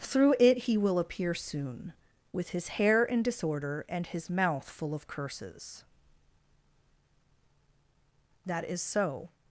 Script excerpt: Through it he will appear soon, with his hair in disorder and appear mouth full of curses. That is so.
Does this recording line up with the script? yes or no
no